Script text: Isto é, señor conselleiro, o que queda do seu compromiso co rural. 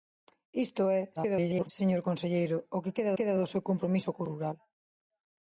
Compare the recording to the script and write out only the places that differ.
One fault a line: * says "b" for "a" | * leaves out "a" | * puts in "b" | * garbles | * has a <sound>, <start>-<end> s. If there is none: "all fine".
* garbles
* puts in "queda"